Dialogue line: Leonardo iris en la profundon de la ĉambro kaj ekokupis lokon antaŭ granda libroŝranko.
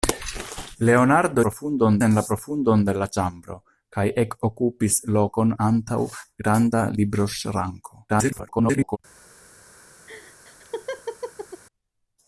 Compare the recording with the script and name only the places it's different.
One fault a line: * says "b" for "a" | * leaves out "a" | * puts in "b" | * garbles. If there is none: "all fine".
* says "profundon" for "iris"
* garbles